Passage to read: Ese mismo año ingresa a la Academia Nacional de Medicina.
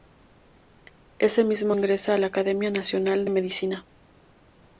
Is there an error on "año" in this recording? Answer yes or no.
yes